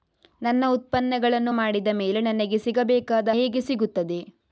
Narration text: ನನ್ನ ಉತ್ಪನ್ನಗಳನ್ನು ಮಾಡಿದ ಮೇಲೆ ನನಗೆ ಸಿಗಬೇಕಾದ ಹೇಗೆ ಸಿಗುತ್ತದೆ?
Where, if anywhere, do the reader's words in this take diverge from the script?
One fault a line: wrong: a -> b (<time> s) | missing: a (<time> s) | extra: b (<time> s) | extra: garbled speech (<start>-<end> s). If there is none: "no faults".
no faults